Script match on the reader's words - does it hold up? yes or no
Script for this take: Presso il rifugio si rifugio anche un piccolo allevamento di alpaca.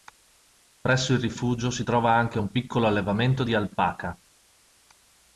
no